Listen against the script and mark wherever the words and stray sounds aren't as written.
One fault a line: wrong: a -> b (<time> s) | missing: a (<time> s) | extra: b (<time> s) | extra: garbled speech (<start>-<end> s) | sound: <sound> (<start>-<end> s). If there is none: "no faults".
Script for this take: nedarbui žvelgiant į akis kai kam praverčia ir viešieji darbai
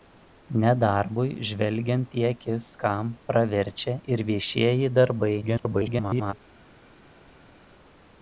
missing: kai (2.7 s)
extra: garbled speech (5.4-6.3 s)